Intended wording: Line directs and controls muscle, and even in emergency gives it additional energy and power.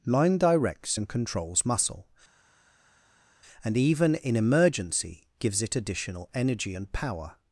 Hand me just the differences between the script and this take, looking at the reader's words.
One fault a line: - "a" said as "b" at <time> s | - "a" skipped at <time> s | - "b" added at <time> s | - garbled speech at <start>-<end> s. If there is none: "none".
none